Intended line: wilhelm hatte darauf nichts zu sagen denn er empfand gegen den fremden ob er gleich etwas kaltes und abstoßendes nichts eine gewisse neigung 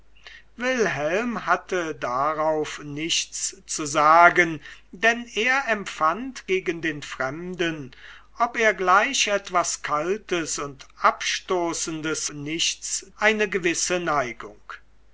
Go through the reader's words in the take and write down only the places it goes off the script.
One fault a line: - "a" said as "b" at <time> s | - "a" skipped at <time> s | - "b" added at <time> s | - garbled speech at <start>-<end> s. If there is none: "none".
none